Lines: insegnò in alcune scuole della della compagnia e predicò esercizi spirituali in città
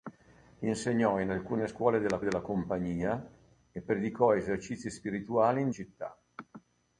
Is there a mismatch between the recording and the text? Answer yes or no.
no